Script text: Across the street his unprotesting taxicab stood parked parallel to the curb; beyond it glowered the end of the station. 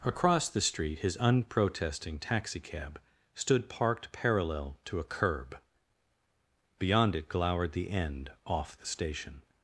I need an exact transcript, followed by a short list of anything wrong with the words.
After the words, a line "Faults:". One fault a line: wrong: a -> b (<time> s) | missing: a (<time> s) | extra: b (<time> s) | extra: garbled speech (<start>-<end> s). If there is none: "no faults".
Across the street his unprotesting taxicab stood parked parallel to a curb; beyond it glowered the end off the station.
Faults:
wrong: the -> a (5.0 s)
wrong: of -> off (8.4 s)